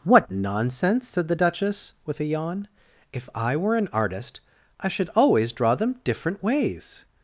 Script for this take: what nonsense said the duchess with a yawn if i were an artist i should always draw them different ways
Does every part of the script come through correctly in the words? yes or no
yes